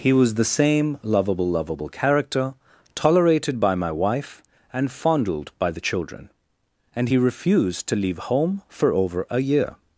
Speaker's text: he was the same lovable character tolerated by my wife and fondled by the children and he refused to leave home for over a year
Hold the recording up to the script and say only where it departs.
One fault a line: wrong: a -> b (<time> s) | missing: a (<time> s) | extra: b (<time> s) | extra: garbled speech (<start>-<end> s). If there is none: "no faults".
extra: lovable (1.5 s)